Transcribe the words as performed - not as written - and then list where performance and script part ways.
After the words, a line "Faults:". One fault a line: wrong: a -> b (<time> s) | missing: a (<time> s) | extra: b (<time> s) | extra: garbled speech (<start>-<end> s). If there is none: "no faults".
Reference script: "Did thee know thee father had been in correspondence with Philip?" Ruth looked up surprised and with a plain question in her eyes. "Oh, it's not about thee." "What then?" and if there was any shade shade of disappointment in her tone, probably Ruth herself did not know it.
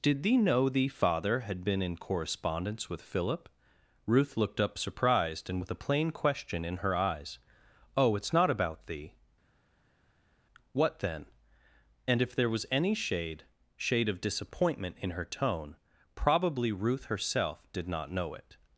"Did thee know thee father had been in correspondence with Philip?" Ruth looked up surprised and with a plain question in her eyes. "Oh, it's not about thee." "What then?" and if there was any shade shade of disappointment in her tone, probably Ruth herself did not know it.
Faults:
no faults